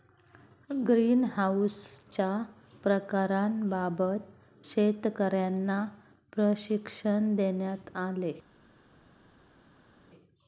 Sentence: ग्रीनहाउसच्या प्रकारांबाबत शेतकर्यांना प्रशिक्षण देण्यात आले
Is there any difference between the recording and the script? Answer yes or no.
no